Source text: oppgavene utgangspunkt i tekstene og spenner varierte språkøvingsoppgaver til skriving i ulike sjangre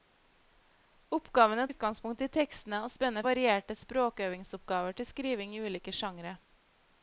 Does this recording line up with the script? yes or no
yes